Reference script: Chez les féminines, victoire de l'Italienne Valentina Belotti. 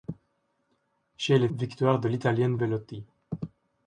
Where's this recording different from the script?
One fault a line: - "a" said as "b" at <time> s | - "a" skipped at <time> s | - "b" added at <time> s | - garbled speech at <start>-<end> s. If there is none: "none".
- "féminines" skipped at 1.5 s
- "Valentina" skipped at 2.6 s